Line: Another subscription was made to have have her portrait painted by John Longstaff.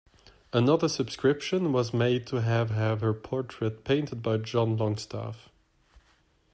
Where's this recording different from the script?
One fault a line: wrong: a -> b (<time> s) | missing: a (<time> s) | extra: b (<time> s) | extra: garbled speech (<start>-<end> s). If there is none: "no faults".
no faults